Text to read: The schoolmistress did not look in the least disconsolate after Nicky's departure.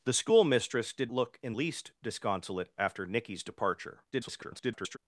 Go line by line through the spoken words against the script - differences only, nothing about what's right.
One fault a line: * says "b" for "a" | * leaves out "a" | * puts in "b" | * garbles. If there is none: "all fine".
* leaves out "not"
* leaves out "the"
* garbles